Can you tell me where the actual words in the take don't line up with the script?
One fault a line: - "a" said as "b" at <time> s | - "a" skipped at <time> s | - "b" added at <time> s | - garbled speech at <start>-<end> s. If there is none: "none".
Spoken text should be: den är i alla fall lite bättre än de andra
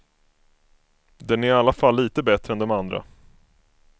none